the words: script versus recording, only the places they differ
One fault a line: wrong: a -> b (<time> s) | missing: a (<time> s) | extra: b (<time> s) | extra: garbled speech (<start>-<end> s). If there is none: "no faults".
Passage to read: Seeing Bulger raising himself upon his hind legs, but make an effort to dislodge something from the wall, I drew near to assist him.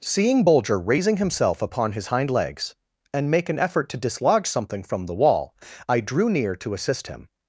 wrong: but -> and (3.1 s)